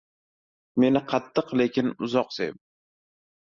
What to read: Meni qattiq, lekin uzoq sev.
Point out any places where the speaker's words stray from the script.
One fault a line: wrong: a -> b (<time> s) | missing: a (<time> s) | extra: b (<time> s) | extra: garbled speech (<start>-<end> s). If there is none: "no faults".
no faults